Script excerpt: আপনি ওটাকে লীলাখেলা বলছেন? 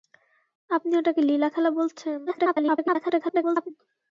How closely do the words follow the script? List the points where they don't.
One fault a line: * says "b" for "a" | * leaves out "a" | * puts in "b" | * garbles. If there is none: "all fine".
* garbles